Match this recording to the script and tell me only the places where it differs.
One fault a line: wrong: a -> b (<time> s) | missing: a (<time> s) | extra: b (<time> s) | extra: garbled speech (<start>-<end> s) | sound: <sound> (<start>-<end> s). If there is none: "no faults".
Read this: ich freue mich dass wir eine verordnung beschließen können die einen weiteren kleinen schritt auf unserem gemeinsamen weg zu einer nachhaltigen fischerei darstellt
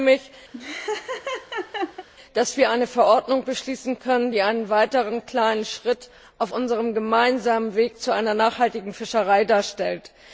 sound: laugh (0.5-2.1 s)